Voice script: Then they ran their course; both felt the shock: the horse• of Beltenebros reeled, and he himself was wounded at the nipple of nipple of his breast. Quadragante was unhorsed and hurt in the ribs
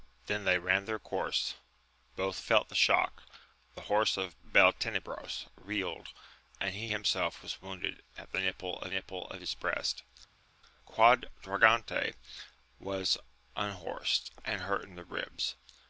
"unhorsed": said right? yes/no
yes